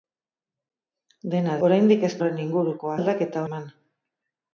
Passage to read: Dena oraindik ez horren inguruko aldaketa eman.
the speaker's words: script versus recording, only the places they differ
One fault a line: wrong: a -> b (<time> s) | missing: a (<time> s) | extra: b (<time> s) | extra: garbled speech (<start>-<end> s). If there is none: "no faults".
no faults